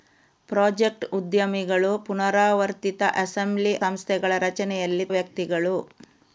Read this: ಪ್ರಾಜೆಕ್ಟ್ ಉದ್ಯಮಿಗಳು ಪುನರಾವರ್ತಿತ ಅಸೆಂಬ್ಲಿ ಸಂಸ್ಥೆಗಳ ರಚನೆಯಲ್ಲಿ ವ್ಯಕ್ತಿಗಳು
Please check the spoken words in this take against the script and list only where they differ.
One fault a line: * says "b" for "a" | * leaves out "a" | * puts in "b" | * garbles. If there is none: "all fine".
all fine